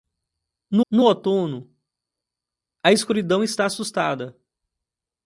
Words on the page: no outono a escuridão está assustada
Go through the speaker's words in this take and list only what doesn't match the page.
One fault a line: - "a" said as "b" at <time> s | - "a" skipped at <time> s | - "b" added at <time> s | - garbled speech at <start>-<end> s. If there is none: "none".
- "no" added at 0.9 s